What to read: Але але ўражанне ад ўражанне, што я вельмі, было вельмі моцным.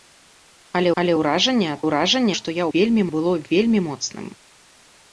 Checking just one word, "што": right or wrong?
right